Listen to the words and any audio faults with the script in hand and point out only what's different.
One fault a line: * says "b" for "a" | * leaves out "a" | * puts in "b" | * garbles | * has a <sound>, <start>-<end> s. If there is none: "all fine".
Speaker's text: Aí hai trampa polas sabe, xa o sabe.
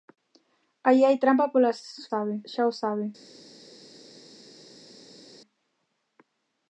all fine